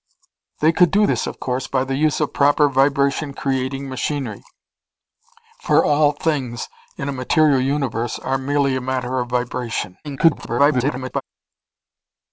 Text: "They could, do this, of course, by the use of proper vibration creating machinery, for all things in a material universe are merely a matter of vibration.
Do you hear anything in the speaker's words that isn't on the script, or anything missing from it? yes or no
yes